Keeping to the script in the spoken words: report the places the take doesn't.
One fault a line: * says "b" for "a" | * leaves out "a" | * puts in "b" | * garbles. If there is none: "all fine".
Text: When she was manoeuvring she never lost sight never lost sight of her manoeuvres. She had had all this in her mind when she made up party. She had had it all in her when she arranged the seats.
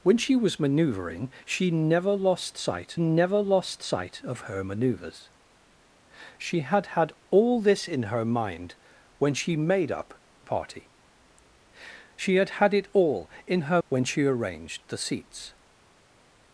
all fine